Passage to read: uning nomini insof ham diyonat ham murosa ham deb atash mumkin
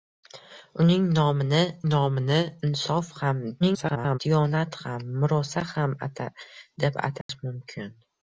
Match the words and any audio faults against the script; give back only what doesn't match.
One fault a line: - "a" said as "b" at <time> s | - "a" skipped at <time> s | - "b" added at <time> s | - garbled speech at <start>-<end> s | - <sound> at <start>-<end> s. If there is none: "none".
- "nomini" added at 1.9 s
- garbled speech at 3.6-4.2 s
- dropout at 7.2-7.3 s